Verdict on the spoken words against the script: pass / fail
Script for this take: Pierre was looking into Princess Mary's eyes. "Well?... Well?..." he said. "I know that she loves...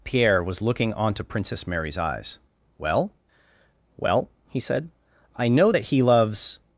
fail